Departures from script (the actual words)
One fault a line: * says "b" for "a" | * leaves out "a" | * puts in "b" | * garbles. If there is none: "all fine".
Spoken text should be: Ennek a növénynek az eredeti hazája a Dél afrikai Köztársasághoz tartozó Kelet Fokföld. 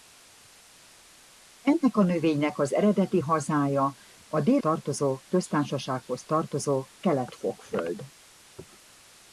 * says "tartozó" for "afrikai"